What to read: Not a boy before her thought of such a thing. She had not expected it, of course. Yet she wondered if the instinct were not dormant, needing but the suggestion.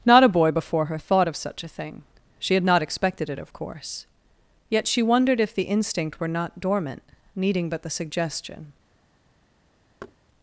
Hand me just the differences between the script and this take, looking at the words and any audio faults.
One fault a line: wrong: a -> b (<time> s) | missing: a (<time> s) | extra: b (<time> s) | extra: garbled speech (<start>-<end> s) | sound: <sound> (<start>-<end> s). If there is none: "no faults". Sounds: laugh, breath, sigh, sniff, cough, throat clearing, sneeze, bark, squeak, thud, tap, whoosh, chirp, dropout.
sound: thud (10.0-10.2 s)